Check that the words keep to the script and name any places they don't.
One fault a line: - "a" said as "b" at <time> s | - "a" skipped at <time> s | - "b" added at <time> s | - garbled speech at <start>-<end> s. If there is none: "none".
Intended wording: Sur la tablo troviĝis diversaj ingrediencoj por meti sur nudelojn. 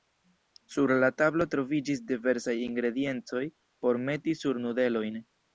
none